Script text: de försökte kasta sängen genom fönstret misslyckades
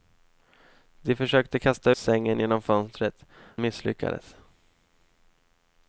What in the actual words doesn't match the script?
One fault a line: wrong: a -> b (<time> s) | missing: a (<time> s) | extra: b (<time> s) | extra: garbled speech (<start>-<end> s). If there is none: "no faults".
no faults